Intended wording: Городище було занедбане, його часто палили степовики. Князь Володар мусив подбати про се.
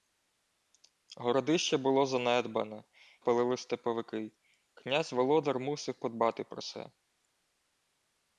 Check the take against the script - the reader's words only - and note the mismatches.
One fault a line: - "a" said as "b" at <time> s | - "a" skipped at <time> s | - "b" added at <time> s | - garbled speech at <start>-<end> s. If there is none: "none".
- "його часто" skipped at 2.8 s